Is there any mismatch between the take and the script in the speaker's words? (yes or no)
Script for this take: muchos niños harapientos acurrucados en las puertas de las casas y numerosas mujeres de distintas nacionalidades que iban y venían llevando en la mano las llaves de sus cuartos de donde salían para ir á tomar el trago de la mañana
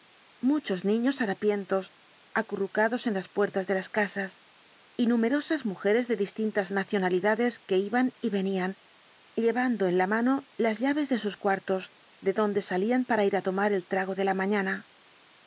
no